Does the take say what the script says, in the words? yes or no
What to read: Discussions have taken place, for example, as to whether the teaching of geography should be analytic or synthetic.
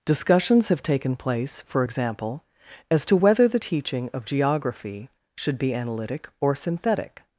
yes